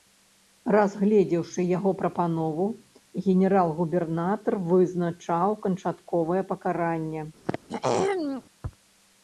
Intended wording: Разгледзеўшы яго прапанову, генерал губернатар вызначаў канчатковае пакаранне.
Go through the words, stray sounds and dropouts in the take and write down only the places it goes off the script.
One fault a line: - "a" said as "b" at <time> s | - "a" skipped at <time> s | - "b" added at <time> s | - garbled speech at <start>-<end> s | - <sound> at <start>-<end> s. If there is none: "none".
- throat clearing at 7.5-8.4 s